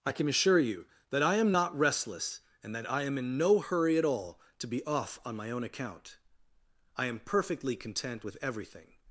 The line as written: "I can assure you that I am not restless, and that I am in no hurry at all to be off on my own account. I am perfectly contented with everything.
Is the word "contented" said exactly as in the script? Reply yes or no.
no